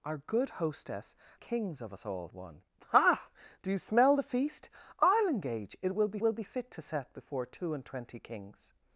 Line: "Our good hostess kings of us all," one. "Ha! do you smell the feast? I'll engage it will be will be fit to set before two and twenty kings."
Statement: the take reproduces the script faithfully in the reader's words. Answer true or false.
true